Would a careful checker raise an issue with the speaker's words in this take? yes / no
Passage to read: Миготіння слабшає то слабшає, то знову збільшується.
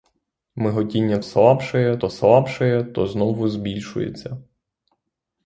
no